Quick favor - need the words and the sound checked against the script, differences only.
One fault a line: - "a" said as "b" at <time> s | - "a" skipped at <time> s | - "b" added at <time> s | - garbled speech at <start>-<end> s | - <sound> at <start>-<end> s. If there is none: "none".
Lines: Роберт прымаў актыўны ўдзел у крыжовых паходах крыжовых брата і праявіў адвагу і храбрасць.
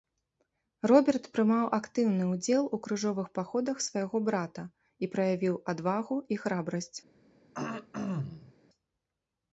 - "крыжовых" said as "свайго" at 3.9 s
- throat clearing at 7.5-8.5 s